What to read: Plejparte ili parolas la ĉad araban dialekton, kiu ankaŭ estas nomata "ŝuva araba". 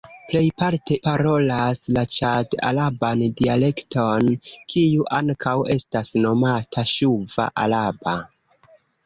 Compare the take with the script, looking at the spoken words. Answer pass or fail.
fail